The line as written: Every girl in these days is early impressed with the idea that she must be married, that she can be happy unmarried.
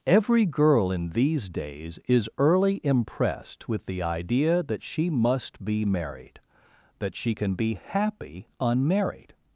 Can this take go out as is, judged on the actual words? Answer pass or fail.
pass